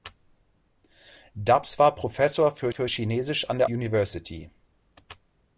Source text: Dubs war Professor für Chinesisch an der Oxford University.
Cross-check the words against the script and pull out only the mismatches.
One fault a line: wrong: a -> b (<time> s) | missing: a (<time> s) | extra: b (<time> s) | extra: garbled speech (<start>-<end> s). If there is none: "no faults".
extra: für (2.7 s)
missing: Oxford (3.7 s)